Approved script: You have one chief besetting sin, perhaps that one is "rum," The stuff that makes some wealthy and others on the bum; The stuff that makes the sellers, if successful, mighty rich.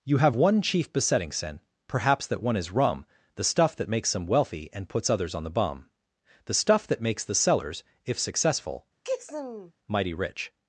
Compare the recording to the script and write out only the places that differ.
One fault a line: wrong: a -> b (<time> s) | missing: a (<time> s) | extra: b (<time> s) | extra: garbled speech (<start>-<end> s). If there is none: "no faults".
extra: puts (4.9 s)